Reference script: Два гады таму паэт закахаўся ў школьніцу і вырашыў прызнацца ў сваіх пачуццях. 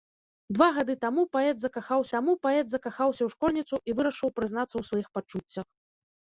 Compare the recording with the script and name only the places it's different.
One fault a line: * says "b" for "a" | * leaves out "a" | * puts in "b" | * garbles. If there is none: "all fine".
* puts in "таму паэт закахаўся"